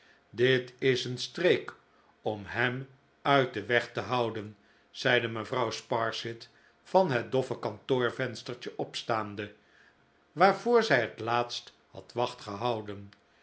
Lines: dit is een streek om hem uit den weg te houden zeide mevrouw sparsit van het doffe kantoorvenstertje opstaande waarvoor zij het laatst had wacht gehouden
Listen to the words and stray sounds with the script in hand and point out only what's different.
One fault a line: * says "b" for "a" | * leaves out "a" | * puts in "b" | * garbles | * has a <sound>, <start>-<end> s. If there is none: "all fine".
all fine